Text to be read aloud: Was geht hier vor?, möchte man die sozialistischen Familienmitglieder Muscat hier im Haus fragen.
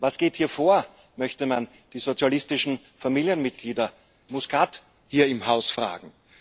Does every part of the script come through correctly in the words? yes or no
yes